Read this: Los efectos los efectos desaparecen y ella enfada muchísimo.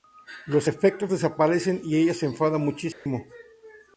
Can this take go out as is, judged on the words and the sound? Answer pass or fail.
fail